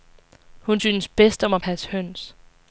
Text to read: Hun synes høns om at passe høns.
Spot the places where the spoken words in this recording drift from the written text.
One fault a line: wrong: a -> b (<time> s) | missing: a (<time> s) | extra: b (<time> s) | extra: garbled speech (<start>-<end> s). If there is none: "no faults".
wrong: høns -> bedst (1.1 s)